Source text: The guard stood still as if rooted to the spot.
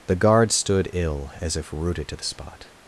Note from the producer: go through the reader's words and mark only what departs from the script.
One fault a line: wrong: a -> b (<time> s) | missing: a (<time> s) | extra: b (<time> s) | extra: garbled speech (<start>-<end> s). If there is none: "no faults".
wrong: still -> ill (0.9 s)